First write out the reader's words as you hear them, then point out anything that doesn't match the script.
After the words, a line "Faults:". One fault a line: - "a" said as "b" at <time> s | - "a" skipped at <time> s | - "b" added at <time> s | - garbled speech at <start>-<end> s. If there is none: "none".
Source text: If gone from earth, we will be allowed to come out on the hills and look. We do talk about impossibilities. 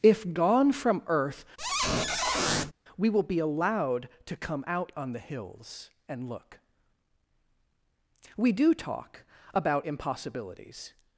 If gone from earth, we will be allowed to come out on the hills and look. We do talk about impossibilities.
Faults:
none